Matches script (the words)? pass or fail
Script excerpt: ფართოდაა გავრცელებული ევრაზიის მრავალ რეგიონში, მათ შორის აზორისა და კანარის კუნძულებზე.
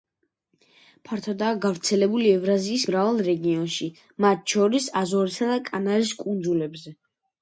pass